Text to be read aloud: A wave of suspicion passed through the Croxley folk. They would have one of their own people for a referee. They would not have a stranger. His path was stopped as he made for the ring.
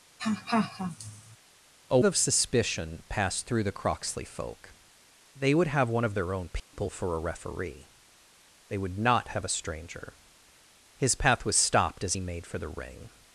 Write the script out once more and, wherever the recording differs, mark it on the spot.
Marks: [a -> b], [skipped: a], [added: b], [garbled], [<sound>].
[laugh] A [skipped: wave] of suspicion passed through the Croxley folk. They would have one of their own people [dropout] for a referee. They would not have a stranger. His path was stopped as he made for the ring.